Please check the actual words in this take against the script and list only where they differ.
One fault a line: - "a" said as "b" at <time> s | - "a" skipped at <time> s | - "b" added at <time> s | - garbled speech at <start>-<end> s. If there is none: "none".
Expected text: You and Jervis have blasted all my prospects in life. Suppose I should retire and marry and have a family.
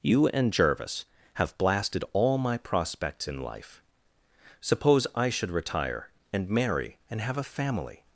none